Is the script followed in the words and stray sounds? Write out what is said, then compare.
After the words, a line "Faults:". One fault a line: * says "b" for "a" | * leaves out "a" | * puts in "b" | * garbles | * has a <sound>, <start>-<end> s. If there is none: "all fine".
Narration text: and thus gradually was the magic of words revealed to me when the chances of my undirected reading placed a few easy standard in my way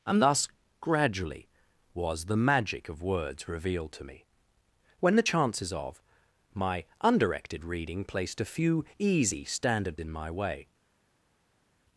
and thus gradually was the magic of words revealed to me when the chances of my undirected reading placed a few easy standard in my way
Faults:
all fine